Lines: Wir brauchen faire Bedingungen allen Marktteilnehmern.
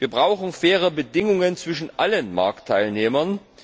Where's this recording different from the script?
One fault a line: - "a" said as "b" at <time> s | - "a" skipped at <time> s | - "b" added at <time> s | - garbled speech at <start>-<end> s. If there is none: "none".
- "zwischen" added at 1.6 s